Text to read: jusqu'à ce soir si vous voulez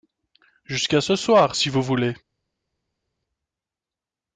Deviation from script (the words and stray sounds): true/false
false